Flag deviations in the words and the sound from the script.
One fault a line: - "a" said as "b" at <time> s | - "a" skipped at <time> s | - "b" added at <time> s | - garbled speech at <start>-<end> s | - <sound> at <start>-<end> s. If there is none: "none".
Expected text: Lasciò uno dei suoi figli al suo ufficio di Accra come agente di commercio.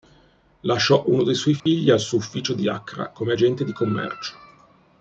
- dropout at 1.6-1.7 s